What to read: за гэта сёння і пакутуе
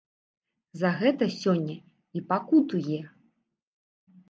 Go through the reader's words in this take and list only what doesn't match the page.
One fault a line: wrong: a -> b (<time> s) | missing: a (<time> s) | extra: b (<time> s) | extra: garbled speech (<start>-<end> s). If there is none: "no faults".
no faults